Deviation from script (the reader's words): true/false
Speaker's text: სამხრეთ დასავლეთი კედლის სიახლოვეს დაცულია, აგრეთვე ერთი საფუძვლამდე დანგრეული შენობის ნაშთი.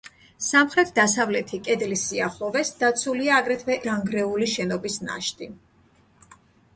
true